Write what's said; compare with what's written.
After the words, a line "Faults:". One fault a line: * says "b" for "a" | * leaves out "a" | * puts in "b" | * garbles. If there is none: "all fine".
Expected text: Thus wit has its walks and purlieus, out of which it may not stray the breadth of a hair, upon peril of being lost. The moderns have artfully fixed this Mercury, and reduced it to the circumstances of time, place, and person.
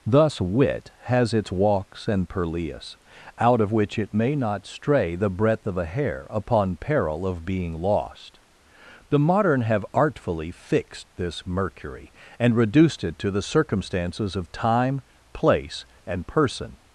Thus wit has its walks and purlieus, out of which it may not stray the breadth of a hair, upon peril of being lost. The modern have artfully fixed this Mercury, and reduced it to the circumstances of time, place, and person.
Faults:
* says "modern" for "moderns"